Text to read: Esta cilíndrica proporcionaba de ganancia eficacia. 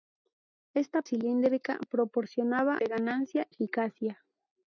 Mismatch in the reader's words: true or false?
false